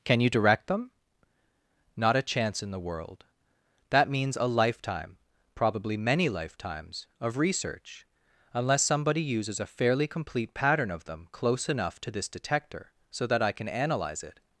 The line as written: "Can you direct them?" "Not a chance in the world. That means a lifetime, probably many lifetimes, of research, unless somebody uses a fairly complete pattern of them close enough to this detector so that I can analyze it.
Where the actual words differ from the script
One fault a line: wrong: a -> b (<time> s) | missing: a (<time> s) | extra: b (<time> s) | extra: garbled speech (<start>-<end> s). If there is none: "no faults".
no faults